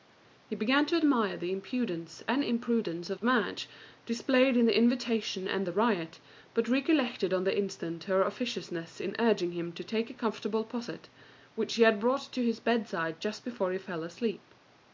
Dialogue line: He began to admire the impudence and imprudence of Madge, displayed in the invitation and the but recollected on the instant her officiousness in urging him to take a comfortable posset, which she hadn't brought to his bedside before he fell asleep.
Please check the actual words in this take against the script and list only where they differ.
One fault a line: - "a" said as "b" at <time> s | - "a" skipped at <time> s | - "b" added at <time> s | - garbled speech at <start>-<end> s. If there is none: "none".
- "riot" added at 5.7 s
- "hadn't" said as "had" at 11.8 s
- "just" added at 13.2 s